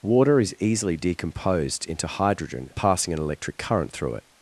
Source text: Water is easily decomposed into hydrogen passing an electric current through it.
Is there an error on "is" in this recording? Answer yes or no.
no